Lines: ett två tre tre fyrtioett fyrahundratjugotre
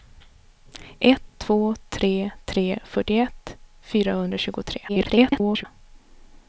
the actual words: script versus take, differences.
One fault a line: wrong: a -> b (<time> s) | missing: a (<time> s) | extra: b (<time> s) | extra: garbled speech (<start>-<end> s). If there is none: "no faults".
extra: garbled speech (4.9-5.7 s)